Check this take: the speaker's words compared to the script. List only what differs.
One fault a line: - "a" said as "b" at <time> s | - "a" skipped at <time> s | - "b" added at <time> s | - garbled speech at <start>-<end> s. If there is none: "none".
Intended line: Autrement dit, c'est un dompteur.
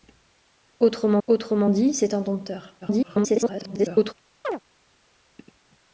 - "autrement" added at 1.3 s
- garbled speech at 2.8-4.1 s